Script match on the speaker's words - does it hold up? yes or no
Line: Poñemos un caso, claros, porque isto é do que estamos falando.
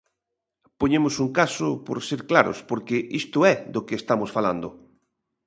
no